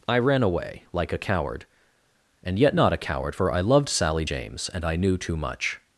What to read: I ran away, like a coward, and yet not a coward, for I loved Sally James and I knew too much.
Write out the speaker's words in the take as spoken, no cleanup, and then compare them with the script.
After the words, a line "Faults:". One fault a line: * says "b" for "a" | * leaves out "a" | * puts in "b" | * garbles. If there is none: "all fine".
I ran away, like a coward, and yet not a coward, for I loved Sally James and I knew too much.
Faults:
all fine